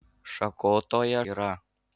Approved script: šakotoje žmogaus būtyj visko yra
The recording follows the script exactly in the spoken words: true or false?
false